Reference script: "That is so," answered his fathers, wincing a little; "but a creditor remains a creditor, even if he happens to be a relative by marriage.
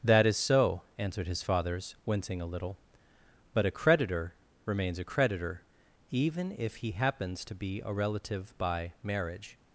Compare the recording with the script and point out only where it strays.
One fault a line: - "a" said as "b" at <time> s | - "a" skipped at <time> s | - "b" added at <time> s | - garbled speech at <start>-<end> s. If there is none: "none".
none